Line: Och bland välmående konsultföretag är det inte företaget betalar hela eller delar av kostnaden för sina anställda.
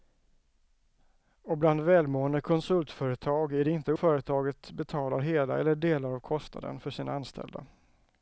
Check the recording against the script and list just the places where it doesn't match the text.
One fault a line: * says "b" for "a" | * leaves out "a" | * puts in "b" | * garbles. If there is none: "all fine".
all fine